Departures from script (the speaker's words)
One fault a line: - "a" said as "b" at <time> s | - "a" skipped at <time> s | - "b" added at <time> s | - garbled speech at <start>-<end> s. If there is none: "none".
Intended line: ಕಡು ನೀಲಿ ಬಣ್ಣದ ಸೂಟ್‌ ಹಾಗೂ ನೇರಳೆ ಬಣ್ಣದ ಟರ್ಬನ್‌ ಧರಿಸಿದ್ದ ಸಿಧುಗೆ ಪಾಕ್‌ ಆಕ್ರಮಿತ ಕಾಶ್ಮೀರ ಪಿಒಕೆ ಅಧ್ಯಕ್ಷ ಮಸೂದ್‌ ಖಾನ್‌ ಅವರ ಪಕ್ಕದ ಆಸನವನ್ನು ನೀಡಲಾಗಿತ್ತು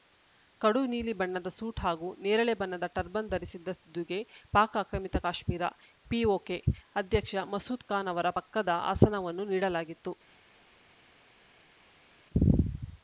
none